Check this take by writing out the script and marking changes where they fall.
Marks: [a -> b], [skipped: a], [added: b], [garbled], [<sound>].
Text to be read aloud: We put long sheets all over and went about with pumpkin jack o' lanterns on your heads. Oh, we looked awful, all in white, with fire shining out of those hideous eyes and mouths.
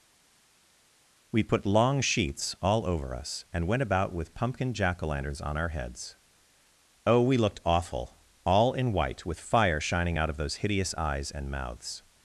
We put long sheets all over [added: us] and went about with pumpkin jack o' lanterns on [your -> our] heads. Oh, we looked awful, all in white, with fire shining out of those hideous eyes and mouths.